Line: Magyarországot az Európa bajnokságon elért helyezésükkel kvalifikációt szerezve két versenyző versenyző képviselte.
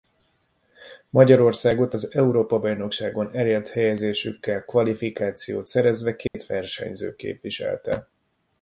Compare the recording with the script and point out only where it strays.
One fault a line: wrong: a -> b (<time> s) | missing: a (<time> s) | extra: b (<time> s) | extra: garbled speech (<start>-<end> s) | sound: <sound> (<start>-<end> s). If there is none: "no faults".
sound: dropout (6.3-6.3 s)
missing: versenyző (7.1 s)